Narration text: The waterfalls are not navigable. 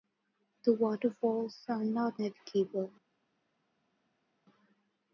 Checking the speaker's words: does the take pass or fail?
pass